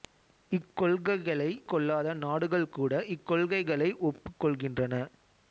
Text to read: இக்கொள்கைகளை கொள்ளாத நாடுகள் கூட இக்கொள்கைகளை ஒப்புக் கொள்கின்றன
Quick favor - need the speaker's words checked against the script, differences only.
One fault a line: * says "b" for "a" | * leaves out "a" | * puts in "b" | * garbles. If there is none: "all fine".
all fine